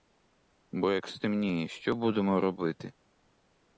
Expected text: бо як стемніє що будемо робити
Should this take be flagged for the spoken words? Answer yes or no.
no